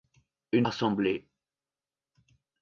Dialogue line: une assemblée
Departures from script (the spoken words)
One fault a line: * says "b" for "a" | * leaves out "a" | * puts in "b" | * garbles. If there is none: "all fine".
all fine